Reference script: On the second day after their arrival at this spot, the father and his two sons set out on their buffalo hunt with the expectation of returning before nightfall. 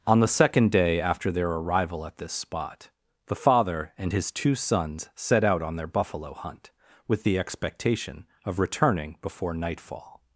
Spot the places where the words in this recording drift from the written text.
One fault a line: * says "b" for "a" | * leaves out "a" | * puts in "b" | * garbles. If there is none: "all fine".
all fine